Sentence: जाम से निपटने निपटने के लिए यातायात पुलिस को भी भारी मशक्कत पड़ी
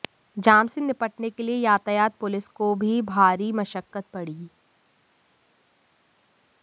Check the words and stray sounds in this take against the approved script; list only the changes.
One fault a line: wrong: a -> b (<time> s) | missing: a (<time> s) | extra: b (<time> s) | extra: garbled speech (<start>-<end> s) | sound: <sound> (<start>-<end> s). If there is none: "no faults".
missing: निपटने (1.3 s)